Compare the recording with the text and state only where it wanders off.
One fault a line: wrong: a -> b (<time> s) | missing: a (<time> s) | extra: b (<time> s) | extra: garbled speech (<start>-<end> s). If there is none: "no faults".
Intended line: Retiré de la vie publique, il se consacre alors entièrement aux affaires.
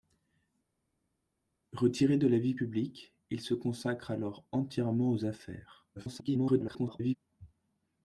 extra: garbled speech (6.0-7.2 s)